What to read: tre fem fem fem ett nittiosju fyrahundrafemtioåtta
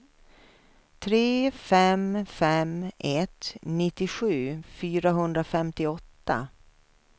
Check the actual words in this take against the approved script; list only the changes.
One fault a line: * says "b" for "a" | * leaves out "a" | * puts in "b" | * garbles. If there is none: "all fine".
* leaves out "fem"